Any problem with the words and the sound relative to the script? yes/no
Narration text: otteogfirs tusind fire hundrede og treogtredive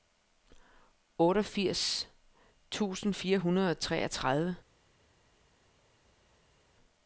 no